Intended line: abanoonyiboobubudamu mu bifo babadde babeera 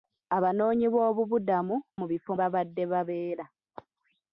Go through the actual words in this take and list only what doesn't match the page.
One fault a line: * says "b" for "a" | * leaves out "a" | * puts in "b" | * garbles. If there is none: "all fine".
all fine